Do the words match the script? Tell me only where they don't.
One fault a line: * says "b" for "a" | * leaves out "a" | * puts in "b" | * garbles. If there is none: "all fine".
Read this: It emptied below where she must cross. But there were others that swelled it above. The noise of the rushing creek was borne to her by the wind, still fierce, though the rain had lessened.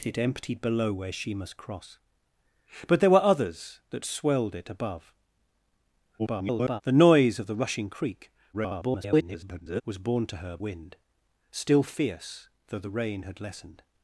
* garbles
* garbles
* leaves out "by the"